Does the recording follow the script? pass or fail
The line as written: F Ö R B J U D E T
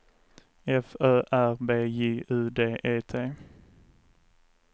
pass